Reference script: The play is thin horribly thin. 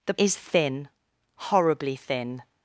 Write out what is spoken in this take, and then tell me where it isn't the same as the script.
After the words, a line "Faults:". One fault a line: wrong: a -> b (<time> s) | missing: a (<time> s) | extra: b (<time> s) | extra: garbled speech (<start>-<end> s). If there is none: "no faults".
The is thin horribly thin.
Faults:
missing: play (0.1 s)